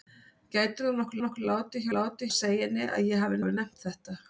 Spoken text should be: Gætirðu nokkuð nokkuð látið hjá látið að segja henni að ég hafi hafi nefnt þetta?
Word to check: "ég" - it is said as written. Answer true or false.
true